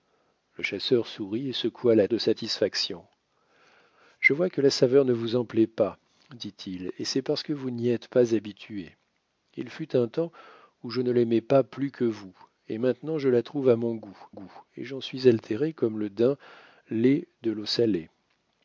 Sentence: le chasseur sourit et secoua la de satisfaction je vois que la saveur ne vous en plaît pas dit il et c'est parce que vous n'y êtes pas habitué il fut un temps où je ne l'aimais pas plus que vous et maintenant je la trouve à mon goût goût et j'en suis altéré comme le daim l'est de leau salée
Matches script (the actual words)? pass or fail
pass